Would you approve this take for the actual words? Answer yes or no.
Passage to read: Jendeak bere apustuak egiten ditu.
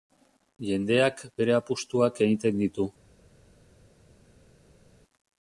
yes